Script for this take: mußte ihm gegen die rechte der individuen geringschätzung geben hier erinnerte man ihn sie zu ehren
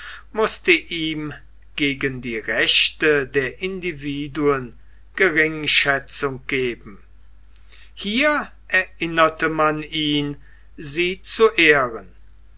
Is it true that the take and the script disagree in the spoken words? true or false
false